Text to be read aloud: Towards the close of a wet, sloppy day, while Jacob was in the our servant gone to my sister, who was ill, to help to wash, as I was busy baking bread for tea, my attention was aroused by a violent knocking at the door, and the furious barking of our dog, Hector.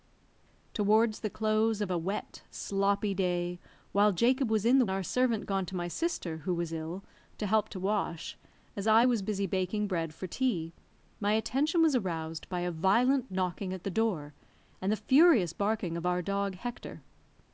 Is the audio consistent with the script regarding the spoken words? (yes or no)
yes